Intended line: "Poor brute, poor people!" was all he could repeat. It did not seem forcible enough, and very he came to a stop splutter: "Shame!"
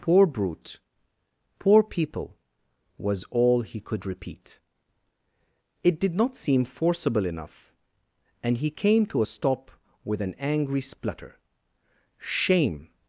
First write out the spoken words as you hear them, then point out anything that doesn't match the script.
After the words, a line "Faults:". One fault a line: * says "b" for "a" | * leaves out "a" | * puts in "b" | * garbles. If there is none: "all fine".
"Poor brute, poor people!" was all he could repeat. It did not seem forcible enough, and he came to a stop with an angry splutter: "Shame!"
Faults:
* leaves out "very"
* puts in "with an angry"